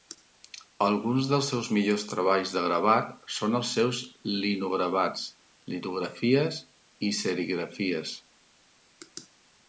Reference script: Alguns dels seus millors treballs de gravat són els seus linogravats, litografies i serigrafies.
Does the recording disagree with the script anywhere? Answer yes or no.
no